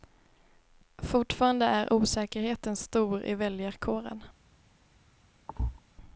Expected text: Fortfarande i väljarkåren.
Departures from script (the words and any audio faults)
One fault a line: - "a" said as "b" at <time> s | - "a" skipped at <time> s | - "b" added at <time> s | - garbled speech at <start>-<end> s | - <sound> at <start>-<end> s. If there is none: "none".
- "är osäkerheten stor" added at 1.6 s
- thud at 5.5-5.8 s